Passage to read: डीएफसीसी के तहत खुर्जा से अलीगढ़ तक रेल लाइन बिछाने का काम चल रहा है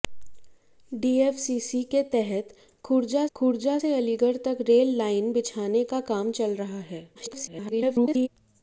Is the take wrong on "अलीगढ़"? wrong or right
right